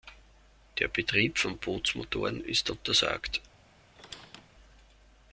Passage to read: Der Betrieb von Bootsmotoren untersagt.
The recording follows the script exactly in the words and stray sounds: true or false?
false